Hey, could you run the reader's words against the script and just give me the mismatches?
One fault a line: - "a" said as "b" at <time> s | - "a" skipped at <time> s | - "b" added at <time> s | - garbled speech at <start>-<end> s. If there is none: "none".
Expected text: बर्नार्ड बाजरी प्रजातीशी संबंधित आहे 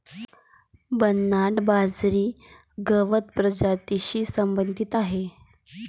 - "गवत" added at 2.9 s